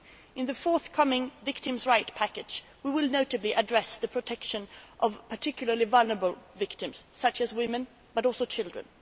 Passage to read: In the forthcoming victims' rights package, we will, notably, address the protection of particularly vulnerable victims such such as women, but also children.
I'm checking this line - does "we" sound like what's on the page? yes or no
yes